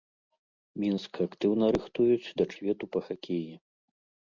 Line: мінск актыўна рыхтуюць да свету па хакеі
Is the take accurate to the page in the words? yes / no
yes